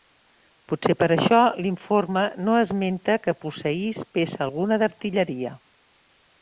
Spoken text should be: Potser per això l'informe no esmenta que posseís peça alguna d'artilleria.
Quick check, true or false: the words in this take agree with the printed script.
true